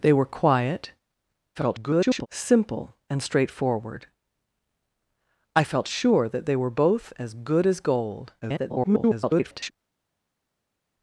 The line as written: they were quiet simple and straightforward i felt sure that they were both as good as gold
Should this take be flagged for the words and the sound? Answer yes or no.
yes